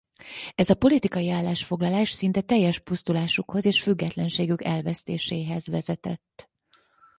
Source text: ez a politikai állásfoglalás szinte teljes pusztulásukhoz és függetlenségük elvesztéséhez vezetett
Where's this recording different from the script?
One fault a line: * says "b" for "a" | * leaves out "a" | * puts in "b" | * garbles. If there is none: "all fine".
all fine